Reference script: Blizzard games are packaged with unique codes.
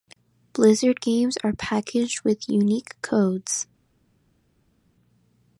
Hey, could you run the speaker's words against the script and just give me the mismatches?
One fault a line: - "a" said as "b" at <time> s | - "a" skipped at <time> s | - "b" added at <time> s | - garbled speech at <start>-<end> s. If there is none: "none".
none